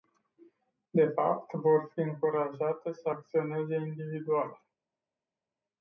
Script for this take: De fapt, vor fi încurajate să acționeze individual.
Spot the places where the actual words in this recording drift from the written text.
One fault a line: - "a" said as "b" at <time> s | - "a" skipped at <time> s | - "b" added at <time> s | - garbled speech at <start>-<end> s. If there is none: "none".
none